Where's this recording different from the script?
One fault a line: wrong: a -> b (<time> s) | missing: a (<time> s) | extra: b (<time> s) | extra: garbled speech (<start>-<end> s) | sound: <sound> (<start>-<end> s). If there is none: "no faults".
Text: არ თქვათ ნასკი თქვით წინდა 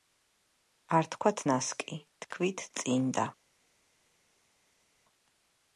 no faults